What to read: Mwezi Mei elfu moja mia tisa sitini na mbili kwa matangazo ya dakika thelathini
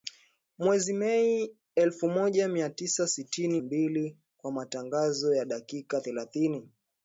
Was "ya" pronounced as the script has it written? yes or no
yes